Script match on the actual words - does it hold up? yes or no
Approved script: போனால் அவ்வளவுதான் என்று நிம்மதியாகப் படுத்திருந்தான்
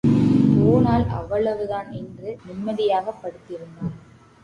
yes